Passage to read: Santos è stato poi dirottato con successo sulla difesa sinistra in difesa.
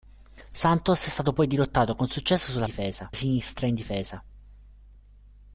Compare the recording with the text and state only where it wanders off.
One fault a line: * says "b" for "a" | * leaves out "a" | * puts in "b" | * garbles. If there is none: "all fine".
all fine